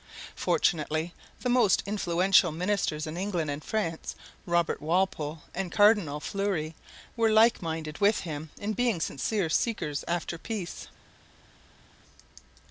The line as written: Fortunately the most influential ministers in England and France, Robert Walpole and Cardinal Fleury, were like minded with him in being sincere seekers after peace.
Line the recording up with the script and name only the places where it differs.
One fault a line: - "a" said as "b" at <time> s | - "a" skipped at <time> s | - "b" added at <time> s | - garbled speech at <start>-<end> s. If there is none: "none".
none